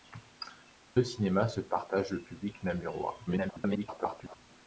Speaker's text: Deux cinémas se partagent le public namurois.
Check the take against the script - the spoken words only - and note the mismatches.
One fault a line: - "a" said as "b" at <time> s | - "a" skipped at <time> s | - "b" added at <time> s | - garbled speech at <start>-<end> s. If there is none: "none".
- garbled speech at 3.3-4.4 s